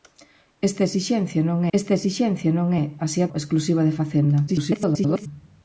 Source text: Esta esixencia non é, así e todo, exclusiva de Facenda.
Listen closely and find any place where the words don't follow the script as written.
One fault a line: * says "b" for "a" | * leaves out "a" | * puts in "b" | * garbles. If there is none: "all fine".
* puts in "esta esixencia non"
* leaves out "todo"
* garbles